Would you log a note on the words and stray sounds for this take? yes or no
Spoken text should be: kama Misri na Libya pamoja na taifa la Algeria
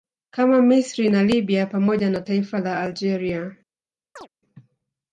yes